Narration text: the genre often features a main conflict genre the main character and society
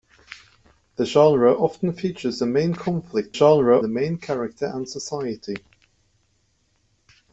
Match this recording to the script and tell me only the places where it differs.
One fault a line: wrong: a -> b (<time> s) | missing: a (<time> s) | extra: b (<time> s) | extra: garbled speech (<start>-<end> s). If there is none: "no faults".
no faults